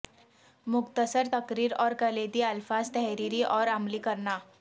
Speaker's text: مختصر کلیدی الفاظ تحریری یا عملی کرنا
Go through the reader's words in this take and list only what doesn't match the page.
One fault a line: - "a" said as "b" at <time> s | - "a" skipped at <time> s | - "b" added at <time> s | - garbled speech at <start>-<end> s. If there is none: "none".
- "تقریر اور" added at 1.3 s
- "یا" said as "اور" at 3.4 s